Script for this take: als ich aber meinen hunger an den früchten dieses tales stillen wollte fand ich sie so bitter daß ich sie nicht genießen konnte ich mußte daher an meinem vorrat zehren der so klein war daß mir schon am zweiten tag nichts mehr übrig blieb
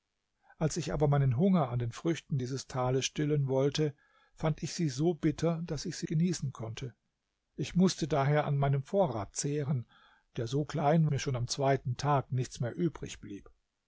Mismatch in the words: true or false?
true